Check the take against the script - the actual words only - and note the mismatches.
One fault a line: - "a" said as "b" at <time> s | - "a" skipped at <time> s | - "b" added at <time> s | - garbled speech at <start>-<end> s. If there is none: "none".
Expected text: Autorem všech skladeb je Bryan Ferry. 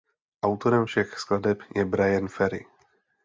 none